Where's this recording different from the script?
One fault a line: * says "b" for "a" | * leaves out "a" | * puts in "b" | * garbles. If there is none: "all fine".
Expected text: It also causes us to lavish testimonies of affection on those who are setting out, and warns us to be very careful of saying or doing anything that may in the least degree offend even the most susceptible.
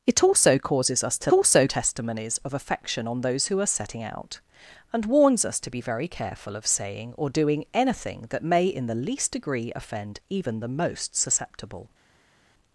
* says "also" for "lavish"